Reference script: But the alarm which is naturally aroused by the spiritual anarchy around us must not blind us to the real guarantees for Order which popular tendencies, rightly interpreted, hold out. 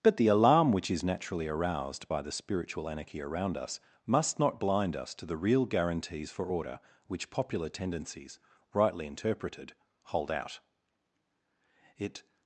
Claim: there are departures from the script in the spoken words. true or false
true